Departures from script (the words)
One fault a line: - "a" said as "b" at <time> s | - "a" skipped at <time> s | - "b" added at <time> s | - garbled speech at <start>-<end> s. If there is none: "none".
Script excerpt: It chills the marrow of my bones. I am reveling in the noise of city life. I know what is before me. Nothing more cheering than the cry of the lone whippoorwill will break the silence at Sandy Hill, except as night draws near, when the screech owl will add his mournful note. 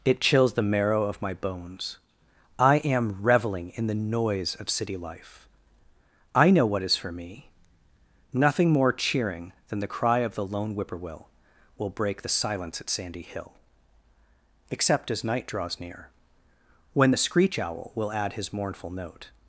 - "before" said as "for" at 7.0 s